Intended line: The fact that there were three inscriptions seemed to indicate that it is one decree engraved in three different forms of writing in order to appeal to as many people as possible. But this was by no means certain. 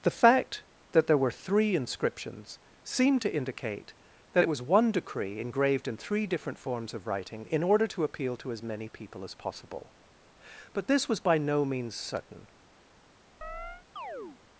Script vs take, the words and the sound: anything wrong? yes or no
yes